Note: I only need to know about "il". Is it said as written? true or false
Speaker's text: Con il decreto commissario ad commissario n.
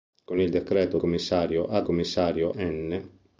true